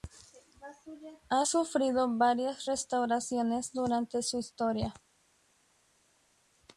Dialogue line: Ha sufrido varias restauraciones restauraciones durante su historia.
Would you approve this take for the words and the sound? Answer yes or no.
no